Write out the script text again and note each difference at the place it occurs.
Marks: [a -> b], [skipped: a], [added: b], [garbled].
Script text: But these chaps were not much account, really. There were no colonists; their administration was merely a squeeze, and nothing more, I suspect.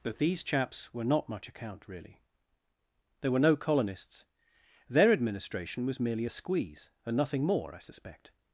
But these chaps were not much account, really. There were no colonists; their administration was merely a squeeze, and nothing more, I suspect.